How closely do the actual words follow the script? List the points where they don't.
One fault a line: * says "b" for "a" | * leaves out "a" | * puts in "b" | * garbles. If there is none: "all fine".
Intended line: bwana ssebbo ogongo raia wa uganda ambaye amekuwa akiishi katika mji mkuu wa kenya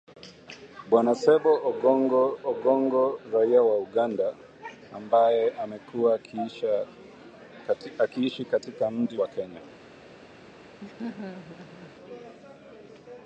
* puts in "ogongo"
* leaves out "mkuu"